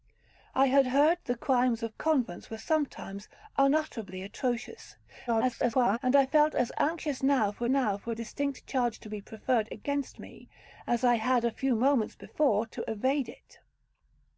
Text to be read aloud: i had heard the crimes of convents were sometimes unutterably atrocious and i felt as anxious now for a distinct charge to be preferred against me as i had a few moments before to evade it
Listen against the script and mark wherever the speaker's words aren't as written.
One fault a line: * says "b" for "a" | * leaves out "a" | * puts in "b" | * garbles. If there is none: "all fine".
* garbles
* puts in "now for"